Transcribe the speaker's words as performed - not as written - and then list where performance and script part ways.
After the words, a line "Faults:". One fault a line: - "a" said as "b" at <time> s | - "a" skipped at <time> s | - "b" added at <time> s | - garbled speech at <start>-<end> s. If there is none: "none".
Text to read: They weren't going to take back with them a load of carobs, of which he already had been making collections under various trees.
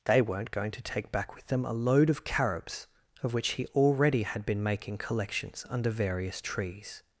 They weren't going to take back with them a load of carobs, of which he already had been making collections under various trees.
Faults:
none